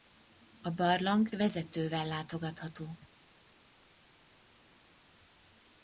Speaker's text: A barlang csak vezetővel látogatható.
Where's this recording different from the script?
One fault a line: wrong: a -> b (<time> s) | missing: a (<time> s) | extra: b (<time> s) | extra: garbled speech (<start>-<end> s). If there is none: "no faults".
missing: csak (1.3 s)